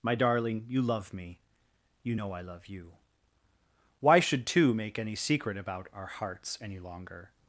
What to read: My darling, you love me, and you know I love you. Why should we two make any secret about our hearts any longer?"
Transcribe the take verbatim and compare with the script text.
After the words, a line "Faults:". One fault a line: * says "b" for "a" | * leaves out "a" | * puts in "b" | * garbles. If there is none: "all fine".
My darling, you love me, you know I love you. Why should two make any secret about our hearts any longer?"
Faults:
* leaves out "and"
* leaves out "we"